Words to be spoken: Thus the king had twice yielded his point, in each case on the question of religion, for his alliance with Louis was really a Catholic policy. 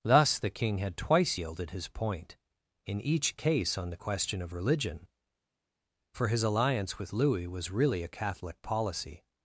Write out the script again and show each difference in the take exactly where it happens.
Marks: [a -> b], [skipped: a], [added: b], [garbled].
Thus the king had twice yielded his point, in each case on the question of religion, for his alliance with Louis was really a Catholic policy.